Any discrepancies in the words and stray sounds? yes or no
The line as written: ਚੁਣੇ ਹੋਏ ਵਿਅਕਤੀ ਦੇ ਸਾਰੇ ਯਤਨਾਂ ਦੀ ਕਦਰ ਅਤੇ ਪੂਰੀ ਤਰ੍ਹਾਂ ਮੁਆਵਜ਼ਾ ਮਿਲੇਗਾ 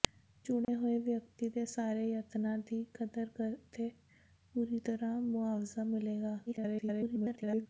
yes